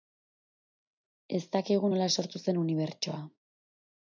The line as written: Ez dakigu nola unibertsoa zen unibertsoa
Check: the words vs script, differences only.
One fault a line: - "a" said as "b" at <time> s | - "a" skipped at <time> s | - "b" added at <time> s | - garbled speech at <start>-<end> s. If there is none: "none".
- "unibertsoa" said as "sortu" at 2.2 s